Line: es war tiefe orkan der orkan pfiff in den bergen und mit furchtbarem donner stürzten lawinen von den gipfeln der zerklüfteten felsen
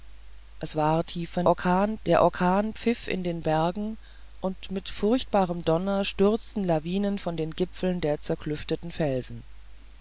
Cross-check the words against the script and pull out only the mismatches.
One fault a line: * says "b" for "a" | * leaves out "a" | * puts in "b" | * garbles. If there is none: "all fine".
all fine